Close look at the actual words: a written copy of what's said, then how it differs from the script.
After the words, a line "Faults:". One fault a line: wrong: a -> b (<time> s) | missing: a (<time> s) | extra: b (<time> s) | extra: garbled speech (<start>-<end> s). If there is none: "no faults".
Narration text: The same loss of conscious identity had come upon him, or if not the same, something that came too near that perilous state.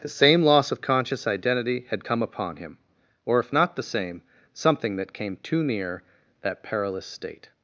The same loss of conscious identity had come upon him, or if not the same, something that came too near that perilous state.
Faults:
no faults